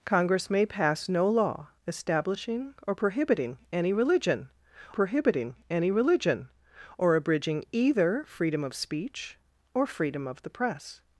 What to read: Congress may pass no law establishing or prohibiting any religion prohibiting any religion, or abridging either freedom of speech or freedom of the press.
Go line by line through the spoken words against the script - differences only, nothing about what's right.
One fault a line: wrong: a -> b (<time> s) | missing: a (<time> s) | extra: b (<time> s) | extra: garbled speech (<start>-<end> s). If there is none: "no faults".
no faults